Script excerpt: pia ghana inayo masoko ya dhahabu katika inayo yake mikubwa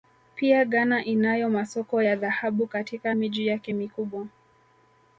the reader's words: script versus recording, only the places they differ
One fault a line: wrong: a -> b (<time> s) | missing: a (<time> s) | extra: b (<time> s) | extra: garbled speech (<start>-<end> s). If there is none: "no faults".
wrong: inayo -> miji (3.1 s)